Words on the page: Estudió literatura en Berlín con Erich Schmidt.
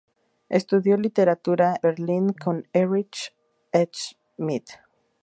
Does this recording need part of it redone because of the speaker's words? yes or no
yes